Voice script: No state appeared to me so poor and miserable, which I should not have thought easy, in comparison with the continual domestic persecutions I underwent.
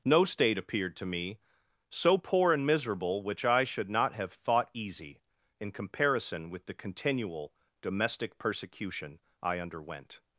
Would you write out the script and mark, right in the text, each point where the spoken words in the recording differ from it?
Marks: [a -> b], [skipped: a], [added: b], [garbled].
No state appeared to me so poor and miserable, which I should not have thought easy, in comparison with the continual domestic [persecutions -> persecution] I underwent.